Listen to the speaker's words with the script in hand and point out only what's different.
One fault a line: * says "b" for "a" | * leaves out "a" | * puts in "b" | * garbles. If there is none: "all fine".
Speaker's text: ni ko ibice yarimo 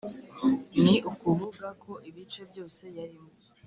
* puts in "ukuvuga"
* puts in "byose"